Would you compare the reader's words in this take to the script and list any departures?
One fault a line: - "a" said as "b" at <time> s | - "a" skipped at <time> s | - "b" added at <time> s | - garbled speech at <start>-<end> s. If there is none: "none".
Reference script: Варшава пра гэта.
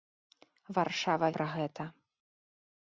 none